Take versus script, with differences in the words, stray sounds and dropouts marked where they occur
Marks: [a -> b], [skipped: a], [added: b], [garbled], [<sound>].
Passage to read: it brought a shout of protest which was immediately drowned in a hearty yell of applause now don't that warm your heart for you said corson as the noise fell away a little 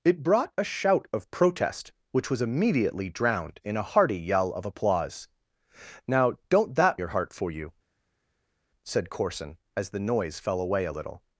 it brought a shout of protest which was immediately drowned in a hearty yell of applause now don't that [skipped: warm] your heart for you said corson as the noise fell away a little